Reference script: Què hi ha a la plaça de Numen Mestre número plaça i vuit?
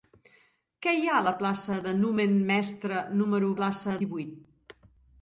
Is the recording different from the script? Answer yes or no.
no